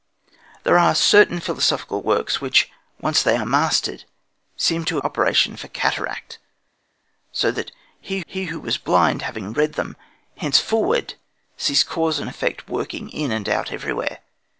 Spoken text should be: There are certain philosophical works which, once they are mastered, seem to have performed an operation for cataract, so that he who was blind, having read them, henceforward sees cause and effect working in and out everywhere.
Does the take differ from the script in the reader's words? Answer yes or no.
yes